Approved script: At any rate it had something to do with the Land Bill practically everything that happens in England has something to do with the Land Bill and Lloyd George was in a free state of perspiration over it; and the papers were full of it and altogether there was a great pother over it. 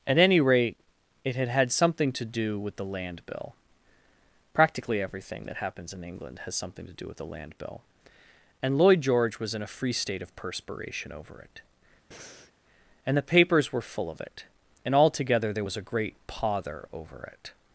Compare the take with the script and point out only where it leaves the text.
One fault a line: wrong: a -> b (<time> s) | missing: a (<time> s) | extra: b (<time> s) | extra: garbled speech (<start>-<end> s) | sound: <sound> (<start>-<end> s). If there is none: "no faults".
extra: had (1.5 s)
sound: breath (12.1-12.5 s)